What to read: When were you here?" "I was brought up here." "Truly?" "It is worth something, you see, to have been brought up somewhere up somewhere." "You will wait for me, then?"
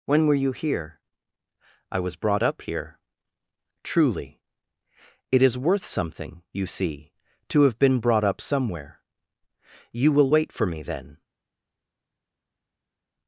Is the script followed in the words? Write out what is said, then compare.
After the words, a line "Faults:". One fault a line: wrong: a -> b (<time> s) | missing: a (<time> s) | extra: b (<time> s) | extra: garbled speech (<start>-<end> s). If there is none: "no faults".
When were you here?" "I was brought up here." "Truly?" "It is worth something, you see, to have been brought up somewhere." "You will wait for me, then?"
Faults:
missing: up somewhere (9.0 s)